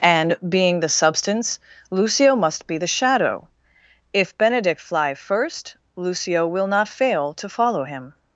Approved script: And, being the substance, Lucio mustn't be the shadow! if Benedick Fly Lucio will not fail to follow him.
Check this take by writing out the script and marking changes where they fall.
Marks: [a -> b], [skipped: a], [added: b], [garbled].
And, being the substance, Lucio [mustn't -> must] be the shadow! if Benedick Fly [added: first] Lucio will not fail to follow him.